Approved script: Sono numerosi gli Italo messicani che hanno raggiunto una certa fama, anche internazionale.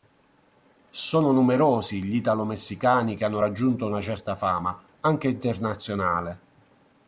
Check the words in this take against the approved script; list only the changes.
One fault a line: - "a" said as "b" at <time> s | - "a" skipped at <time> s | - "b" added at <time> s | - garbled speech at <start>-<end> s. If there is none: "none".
none